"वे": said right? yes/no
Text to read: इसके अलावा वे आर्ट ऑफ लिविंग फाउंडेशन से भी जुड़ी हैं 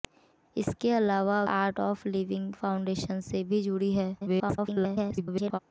no